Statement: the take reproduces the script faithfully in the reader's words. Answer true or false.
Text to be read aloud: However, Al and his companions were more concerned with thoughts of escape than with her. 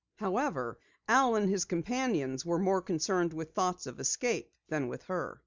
true